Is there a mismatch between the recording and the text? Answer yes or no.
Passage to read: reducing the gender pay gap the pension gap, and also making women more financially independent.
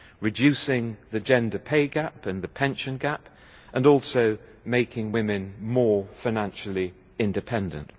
yes